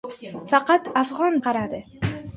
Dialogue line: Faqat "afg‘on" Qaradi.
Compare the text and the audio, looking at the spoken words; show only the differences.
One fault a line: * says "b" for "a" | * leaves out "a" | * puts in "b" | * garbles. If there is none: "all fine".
all fine